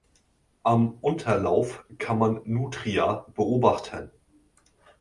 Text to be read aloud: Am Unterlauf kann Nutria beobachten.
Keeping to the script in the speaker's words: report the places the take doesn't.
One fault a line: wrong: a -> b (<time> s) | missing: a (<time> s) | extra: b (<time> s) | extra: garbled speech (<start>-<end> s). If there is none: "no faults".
extra: man (2.2 s)